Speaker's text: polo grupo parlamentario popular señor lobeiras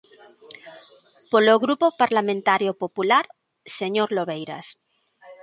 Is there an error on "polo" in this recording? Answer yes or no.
no